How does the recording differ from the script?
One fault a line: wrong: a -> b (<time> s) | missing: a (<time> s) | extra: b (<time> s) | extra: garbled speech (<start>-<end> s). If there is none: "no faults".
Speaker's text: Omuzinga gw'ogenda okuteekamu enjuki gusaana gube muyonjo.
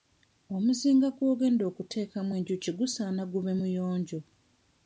no faults